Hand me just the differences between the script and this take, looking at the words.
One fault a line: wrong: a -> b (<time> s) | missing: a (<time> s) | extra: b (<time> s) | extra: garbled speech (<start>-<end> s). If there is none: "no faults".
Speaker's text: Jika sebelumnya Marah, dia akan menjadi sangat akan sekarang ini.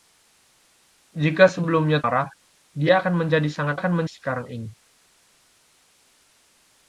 no faults